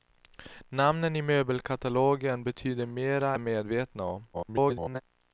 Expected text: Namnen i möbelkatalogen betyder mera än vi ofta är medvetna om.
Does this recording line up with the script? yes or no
no